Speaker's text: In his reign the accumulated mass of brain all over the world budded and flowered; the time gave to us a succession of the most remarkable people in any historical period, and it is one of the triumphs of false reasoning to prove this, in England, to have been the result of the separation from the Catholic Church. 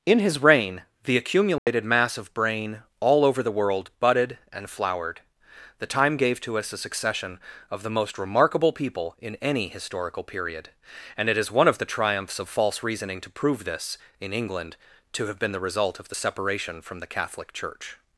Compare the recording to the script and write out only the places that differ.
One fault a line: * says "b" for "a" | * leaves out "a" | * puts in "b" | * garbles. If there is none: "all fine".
all fine